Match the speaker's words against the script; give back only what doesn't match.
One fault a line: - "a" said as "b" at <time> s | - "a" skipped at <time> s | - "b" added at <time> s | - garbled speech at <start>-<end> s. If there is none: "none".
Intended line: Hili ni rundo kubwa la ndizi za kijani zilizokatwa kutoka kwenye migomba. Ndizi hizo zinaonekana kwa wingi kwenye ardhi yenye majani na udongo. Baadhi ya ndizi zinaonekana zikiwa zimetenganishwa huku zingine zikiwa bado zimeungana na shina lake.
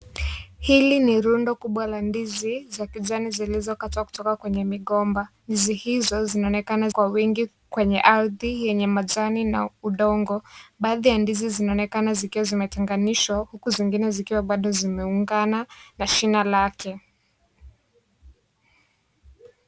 none